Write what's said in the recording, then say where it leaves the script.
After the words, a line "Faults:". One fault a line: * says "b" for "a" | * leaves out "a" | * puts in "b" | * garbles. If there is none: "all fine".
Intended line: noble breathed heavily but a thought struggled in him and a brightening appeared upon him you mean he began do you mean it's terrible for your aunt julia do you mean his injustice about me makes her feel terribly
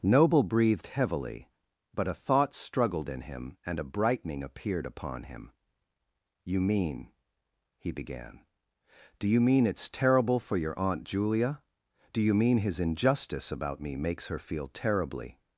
noble breathed heavily but a thought struggled in him and a brightening appeared upon him you mean he began do you mean it's terrible for your aunt julia do you mean his injustice about me makes her feel terribly
Faults:
all fine